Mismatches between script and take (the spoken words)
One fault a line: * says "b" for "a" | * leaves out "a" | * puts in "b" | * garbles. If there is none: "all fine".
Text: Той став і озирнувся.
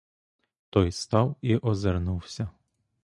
all fine